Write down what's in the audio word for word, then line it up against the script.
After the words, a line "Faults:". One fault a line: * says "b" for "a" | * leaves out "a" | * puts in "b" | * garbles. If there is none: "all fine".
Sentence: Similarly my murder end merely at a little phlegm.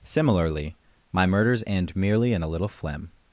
Similarly my murders end merely in a little phlegm.
Faults:
* says "murders" for "murder"
* says "in" for "at"